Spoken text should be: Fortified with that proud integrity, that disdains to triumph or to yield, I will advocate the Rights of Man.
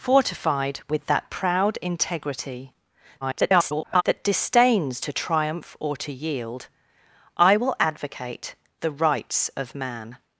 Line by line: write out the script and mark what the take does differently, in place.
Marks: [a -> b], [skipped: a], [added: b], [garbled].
Fortified with that proud integrity, [garbled] that disdains to triumph or to yield, I will advocate the Rights of Man.